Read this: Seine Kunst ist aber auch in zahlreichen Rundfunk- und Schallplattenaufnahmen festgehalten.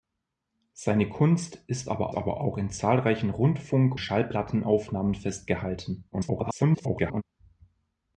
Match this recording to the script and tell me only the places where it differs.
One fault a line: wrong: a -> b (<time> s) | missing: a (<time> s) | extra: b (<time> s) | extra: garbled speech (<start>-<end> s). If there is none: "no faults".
extra: aber (2.1 s)
missing: und (3.9 s)
extra: garbled speech (6.1-7.2 s)